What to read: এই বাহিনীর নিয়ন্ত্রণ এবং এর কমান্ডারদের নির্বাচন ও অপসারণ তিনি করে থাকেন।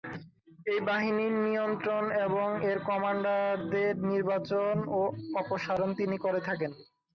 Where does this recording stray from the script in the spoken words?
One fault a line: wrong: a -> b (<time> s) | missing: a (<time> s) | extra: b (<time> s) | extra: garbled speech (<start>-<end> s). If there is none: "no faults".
no faults